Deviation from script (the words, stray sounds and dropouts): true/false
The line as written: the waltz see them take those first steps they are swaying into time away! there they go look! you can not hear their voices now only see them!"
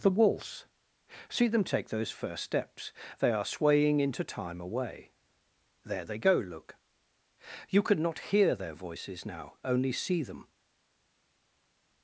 true